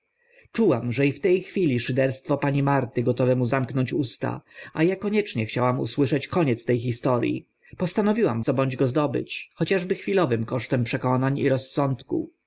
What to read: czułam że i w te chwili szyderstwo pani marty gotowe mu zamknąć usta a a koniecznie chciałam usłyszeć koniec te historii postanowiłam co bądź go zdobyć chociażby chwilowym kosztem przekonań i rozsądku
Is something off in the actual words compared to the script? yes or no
no